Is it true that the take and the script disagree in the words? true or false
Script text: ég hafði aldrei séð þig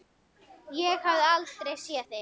false